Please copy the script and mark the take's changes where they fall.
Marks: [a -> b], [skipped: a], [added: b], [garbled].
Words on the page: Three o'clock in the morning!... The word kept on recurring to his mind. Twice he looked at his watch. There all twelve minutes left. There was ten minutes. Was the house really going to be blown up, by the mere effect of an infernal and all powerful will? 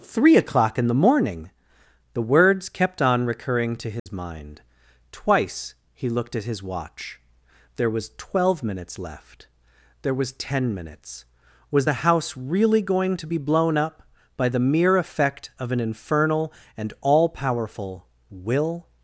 Three o'clock in the morning!... The [word -> words] kept on recurring to his mind. Twice he looked at his watch. There [all -> was] twelve minutes left. There was ten minutes. Was the house really going to be blown up, by the mere effect of an infernal and all powerful will?